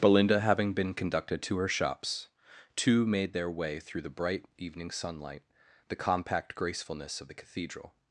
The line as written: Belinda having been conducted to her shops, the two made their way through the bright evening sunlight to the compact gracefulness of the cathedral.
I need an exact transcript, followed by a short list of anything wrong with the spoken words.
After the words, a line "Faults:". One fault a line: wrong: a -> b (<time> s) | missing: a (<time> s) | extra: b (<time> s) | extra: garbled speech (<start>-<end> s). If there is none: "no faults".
Belinda having been conducted to her shops, two made their way through the bright evening sunlight the compact gracefulness of the cathedral.
Faults:
missing: the (2.3 s)
missing: to (5.4 s)